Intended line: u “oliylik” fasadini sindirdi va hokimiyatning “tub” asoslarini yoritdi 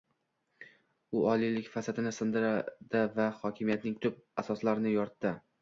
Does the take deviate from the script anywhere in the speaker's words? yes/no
no